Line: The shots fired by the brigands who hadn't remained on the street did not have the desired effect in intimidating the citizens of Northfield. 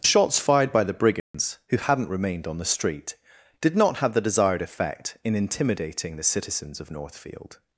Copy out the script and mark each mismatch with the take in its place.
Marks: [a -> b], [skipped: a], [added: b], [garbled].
The shots fired by the brigands who hadn't remained on the street did not have the desired effect in intimidating the citizens of Northfield.